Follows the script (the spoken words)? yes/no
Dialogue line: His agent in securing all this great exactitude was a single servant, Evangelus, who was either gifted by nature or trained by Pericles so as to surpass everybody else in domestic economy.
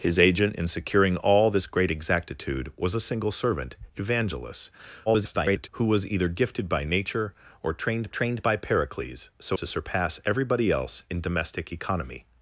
no